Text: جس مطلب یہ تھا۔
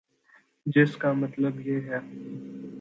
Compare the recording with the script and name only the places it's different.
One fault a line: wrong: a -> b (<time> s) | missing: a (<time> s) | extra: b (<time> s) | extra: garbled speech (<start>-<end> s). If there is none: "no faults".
extra: کا (1.0 s)
wrong: تھا -> ہے (1.8 s)